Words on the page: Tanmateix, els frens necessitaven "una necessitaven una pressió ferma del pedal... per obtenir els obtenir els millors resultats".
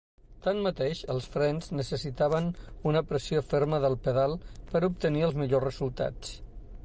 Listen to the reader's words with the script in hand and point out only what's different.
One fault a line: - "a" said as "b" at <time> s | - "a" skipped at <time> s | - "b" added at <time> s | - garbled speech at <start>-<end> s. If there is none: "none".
- "necessitaven una" skipped at 3.0 s
- "obtenir els" skipped at 5.4 s